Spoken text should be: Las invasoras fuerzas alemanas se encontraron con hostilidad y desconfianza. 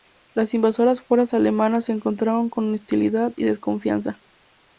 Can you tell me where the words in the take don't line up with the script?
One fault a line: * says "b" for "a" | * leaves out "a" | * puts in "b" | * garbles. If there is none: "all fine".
all fine